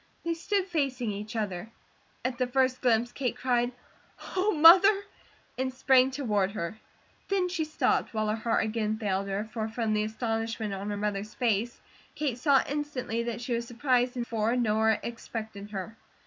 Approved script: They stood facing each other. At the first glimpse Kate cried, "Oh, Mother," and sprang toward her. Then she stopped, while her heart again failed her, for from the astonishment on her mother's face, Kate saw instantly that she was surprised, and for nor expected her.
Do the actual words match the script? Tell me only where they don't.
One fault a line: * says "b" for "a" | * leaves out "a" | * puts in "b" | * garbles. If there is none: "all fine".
all fine